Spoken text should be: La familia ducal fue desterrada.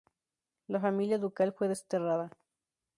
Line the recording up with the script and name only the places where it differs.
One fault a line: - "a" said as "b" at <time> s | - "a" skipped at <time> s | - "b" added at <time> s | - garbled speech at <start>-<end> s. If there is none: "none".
none